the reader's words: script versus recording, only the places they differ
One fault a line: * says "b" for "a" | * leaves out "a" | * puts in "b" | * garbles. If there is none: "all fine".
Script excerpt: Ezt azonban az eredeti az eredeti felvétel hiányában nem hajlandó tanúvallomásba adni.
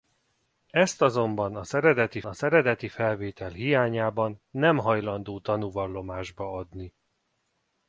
all fine